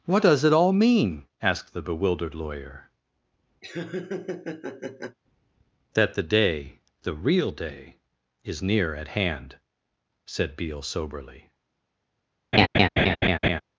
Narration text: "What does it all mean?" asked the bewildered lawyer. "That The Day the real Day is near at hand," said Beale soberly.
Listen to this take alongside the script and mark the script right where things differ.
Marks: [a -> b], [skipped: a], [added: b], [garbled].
"What does it all mean?" asked the bewildered lawyer. "That The Day the real Day is near at hand," said Beale soberly.